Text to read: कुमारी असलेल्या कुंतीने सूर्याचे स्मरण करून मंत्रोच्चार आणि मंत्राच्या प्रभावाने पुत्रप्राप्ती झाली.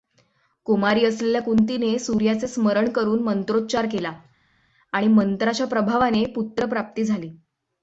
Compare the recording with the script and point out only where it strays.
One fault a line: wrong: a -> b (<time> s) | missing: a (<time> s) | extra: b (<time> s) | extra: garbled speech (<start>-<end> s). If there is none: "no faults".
extra: केला (3.9 s)